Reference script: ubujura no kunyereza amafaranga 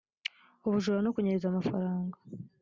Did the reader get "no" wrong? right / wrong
right